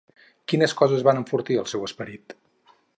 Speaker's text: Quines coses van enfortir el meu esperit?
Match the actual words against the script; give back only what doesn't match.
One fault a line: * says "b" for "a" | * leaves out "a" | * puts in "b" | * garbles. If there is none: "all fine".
* says "seu" for "meu"